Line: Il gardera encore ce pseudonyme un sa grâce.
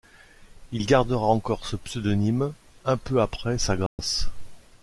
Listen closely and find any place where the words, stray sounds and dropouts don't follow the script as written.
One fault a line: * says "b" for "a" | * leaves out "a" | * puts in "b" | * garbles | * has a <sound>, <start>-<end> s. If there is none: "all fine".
* puts in "peu après"
* has a dropout, 3.9-4.0 s